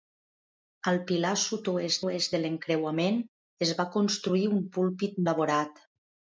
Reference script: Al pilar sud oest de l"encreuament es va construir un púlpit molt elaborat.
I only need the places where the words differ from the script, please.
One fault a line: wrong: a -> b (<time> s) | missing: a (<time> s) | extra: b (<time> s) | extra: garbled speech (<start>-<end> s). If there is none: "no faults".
extra: oest (2.0 s)
missing: molt (5.2 s)